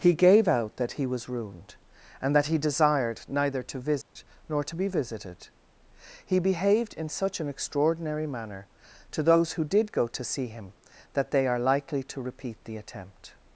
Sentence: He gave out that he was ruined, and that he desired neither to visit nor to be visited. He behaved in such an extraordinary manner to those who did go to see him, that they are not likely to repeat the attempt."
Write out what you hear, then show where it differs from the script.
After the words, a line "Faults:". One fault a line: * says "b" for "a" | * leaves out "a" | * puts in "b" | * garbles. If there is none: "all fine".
He gave out that he was ruined, and that he desired neither to visit nor to be visited. He behaved in such an extraordinary manner to those who did go to see him, that they are likely to repeat the attempt."
Faults:
* leaves out "not"